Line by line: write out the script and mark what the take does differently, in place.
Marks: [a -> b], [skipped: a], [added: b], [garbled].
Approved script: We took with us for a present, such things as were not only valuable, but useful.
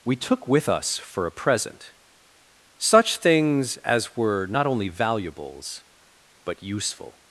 We took with us for a present, such things as were not only [valuable, -> valuables] but useful.